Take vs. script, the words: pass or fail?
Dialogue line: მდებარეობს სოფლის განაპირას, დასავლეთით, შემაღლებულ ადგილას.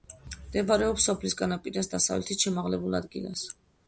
pass